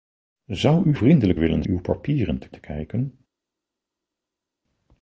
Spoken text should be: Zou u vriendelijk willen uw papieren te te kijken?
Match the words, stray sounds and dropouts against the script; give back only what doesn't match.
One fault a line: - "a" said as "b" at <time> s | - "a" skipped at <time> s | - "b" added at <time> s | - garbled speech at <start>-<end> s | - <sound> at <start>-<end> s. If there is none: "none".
none